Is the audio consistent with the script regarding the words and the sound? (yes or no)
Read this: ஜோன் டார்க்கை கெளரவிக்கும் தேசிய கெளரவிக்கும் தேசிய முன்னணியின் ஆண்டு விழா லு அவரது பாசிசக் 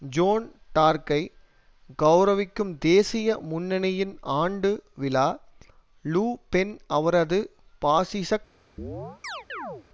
no